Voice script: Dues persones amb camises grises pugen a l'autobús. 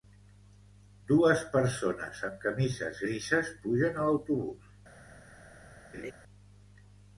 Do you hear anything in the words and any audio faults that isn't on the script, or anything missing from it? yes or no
yes